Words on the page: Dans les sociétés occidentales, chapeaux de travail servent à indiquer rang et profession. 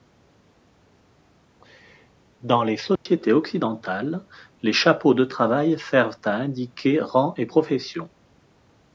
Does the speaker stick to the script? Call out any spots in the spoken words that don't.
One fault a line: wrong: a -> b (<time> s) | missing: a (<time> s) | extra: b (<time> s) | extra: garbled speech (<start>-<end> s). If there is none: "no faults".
extra: les (4.6 s)